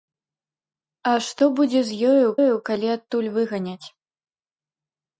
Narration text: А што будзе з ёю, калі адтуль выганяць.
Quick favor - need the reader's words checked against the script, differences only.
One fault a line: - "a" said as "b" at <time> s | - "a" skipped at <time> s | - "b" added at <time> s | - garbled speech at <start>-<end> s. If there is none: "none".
- "ёю" added at 2.4 s